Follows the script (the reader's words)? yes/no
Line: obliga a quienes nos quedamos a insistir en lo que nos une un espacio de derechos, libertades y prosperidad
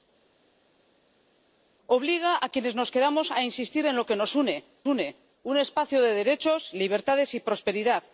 no